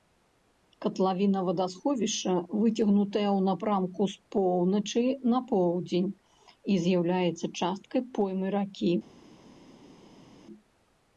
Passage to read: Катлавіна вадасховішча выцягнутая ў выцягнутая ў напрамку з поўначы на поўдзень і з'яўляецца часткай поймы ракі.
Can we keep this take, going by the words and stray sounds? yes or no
no